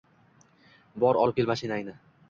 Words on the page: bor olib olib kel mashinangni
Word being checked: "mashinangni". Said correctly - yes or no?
yes